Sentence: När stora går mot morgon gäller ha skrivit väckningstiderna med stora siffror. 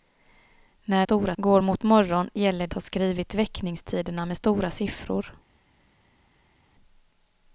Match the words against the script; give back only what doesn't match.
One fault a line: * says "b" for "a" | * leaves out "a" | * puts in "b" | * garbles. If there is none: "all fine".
all fine